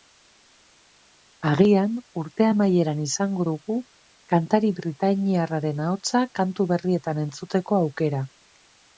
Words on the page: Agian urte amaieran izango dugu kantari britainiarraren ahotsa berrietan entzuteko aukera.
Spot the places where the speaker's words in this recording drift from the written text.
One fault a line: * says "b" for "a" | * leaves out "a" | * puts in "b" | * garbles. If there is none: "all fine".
* puts in "kantu"